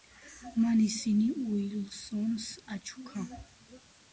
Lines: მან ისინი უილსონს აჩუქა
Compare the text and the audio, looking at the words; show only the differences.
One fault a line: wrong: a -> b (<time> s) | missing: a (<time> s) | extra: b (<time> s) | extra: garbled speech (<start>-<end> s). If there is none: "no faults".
no faults